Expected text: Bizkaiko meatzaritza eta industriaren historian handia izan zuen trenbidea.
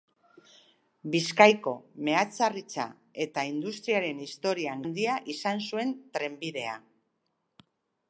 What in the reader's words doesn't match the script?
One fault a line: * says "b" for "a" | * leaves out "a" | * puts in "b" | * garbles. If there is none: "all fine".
all fine